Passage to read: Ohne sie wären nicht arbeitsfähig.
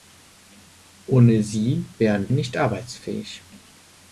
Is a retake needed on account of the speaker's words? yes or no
no